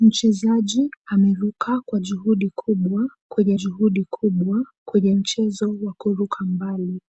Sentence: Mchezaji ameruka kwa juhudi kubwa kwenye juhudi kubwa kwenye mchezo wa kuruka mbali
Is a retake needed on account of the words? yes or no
no